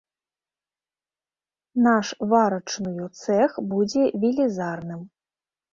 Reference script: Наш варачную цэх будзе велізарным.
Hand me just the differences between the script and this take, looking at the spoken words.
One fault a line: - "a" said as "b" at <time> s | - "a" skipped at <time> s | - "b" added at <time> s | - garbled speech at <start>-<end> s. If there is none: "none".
none